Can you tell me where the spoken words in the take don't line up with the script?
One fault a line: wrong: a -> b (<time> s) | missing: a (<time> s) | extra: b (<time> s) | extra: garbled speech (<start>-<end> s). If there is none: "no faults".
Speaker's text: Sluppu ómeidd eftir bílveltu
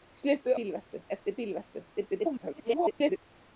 wrong: ómeidd -> bílveltu (0.6 s)
extra: garbled speech (1.9-3.2 s)